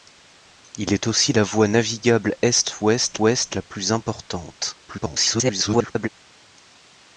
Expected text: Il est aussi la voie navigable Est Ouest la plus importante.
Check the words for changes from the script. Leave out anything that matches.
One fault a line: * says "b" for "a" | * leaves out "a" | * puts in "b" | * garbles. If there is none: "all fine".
* puts in "Ouest"
* garbles